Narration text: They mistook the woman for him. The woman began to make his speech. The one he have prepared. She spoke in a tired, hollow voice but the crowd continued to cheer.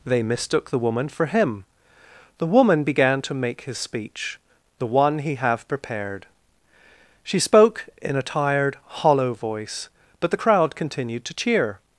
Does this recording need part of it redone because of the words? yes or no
no